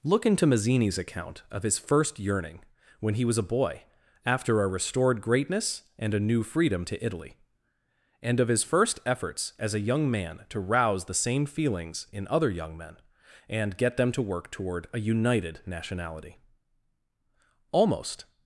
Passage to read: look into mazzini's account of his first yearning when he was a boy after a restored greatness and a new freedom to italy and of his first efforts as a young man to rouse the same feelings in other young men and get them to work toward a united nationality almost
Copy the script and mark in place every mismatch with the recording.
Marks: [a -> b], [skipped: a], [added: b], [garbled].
look into mazzini's account of his first yearning when he was a boy after a restored greatness and a new freedom to italy and of his first efforts as a young man to rouse the same feelings in other young men and get them to work toward a united nationality almost